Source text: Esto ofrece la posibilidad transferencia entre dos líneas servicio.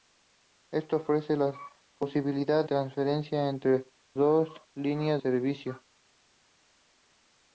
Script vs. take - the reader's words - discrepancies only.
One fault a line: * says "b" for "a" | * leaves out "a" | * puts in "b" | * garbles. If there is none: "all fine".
all fine